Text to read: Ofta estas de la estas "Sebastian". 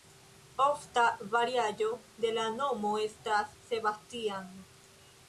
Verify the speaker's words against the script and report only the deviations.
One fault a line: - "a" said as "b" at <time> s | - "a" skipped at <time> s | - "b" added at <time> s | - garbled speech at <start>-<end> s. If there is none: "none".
- "estas" said as "variaĵo" at 1.4 s
- "nomo" added at 2.5 s